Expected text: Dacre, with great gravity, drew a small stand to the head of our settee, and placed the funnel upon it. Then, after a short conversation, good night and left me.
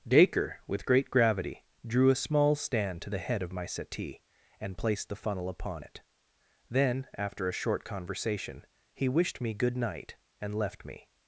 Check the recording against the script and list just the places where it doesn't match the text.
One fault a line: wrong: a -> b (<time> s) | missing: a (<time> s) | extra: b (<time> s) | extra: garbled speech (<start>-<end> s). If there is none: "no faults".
wrong: our -> my (3.5 s)
extra: he wished me (8.9 s)